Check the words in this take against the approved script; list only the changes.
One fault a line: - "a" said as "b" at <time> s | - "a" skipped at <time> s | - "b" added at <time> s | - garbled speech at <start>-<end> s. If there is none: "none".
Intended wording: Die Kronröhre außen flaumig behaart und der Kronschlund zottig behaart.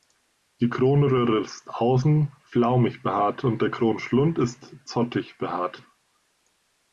- "ist" added at 1.4 s
- "ist" added at 4.4 s